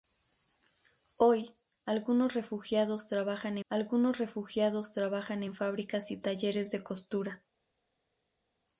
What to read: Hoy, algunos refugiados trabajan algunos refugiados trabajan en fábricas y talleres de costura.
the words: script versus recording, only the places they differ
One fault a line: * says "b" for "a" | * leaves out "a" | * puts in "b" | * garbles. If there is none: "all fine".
all fine